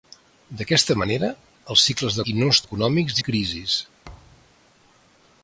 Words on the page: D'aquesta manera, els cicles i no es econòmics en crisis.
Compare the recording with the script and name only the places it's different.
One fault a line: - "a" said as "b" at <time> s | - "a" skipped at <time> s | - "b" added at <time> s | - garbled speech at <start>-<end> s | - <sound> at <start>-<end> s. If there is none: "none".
- thud at 4.0-4.6 s